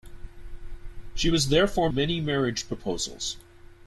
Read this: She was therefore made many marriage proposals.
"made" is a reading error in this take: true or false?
true